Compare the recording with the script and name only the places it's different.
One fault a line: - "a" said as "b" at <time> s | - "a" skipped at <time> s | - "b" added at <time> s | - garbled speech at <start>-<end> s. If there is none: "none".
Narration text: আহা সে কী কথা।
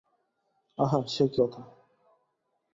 none